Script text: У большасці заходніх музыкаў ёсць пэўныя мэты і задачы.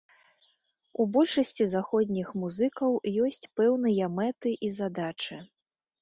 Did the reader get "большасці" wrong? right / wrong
right